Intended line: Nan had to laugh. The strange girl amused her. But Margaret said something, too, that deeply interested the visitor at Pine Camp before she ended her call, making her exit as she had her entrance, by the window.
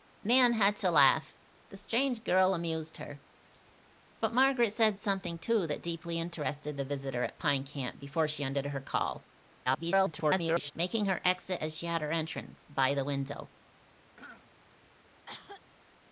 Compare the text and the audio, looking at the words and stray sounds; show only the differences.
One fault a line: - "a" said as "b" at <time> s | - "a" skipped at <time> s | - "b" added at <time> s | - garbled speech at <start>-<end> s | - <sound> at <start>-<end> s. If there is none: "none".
- garbled speech at 9.6-10.7 s
- throat clearing at 14.2-14.5 s
- cough at 15.3-15.6 s